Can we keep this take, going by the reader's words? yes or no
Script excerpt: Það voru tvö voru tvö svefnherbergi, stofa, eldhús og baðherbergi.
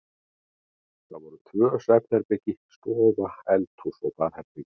no